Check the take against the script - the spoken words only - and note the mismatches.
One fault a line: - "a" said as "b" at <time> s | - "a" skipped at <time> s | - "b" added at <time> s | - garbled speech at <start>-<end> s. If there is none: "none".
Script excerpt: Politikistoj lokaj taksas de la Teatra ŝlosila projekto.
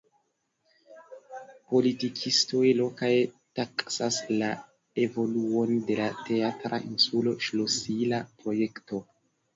- "la evoluon" added at 4.4 s
- "insulo" added at 6.9 s